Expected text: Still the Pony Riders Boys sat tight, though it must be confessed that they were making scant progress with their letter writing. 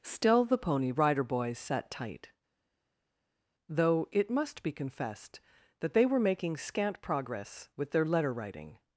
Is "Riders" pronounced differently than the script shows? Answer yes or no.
yes